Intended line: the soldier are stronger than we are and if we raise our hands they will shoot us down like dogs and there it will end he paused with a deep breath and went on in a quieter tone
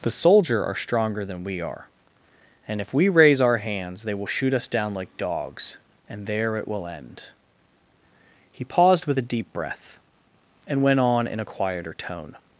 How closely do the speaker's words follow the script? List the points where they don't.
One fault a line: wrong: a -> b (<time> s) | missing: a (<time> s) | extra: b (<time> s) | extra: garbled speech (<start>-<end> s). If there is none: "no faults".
no faults